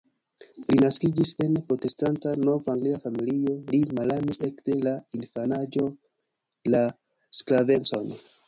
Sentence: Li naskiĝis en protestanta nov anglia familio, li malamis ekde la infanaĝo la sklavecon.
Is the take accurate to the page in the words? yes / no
yes